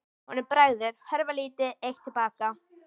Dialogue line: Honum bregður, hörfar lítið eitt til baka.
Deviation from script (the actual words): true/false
false